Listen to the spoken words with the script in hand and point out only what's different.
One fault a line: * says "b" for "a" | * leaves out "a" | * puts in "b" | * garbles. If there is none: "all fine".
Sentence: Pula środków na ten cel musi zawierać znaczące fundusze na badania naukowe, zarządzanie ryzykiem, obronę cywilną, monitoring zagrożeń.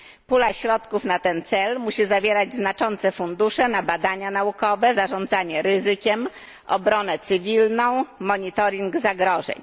all fine